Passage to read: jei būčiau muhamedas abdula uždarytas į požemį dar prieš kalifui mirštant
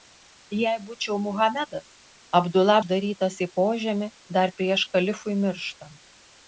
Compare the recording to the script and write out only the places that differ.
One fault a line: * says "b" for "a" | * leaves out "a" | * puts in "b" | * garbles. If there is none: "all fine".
all fine